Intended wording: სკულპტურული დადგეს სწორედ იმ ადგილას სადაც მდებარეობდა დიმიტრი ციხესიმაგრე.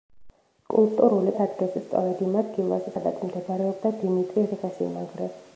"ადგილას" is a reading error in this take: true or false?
false